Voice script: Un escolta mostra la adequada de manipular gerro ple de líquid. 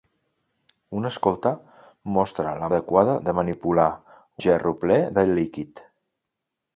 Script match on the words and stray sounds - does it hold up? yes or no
yes